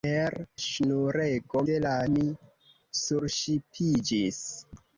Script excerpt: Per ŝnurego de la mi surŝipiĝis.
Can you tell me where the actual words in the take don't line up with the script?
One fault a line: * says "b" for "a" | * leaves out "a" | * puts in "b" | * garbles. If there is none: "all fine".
all fine